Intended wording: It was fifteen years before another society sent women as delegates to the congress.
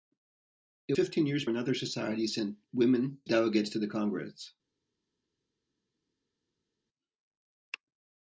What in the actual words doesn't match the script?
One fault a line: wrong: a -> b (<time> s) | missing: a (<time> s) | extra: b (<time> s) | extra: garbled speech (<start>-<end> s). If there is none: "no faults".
missing: was (0.9 s)
missing: before (1.5 s)
missing: as (3.2 s)